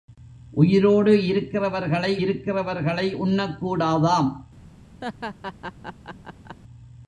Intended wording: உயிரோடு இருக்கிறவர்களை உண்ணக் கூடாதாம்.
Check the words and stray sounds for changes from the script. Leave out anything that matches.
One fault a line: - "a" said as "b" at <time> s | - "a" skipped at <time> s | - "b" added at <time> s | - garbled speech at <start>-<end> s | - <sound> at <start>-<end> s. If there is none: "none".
- "இருக்கிறவர்களை" added at 2.2 s
- laugh at 5.0-6.6 s